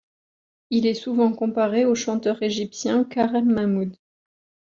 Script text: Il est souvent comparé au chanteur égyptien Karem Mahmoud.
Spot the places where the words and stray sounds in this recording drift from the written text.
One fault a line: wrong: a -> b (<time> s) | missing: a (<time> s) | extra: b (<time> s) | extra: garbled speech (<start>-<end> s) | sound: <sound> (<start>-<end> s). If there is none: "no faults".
no faults